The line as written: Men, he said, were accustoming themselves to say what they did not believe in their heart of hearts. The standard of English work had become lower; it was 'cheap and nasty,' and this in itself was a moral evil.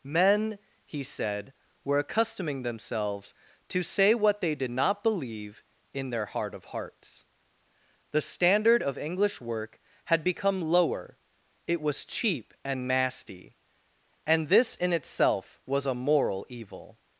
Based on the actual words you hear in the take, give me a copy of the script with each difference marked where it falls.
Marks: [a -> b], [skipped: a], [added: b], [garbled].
Men, he said, were accustoming themselves to say what they did not believe in their heart of hearts. The standard of English work had become lower; it was 'cheap and nasty,' and this in itself was a moral evil.